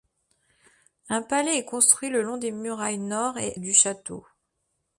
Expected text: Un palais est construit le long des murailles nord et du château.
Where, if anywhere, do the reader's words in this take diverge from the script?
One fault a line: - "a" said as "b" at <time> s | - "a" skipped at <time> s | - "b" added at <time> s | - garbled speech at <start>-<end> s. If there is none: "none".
none